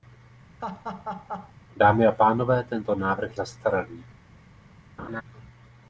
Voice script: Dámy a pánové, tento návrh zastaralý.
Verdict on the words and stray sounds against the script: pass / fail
fail